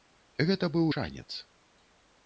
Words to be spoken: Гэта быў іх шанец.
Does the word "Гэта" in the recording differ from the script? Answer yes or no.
no